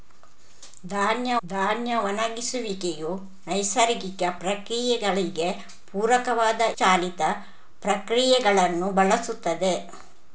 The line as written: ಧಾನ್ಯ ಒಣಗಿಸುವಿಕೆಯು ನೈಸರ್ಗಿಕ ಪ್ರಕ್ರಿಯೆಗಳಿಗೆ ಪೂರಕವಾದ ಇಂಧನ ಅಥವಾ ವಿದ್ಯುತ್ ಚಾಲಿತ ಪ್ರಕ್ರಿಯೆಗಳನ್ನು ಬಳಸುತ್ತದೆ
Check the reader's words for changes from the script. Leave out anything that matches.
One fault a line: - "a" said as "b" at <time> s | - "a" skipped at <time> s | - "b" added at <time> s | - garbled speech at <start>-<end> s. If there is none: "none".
- "ಧಾನ್ಯ" added at 1.5 s
- "ಇಂಧನ ಅಥವಾ ವಿದ್ಯುತ್" skipped at 6.6 s